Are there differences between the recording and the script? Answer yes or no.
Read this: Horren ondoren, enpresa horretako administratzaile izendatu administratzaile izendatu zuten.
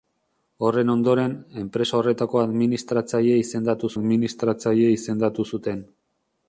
no